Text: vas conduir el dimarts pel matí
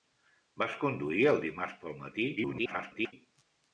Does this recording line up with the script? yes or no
no